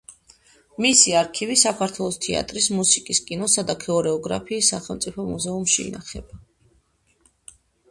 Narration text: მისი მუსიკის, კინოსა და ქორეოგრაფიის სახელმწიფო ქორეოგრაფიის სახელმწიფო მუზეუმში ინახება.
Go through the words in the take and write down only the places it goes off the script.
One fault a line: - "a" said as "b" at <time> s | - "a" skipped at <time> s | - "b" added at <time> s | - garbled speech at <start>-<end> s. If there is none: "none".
- "არქივი საქართველოს თეატრის" added at 1.2 s
- "ქორეოგრაფიის სახელმწიფო" skipped at 5.3 s